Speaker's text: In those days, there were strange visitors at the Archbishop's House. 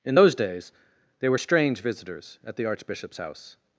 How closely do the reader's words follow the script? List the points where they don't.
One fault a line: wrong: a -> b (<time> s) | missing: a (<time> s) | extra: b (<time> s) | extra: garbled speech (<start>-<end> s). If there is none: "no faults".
wrong: there -> they (1.2 s)